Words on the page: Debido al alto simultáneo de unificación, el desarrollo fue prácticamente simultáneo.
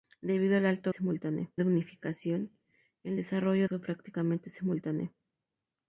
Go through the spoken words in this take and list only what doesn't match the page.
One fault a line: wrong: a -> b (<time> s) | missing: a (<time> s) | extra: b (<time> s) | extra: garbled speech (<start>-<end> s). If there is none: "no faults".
no faults